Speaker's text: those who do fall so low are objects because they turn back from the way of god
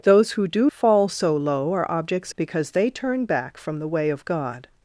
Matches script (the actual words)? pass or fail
pass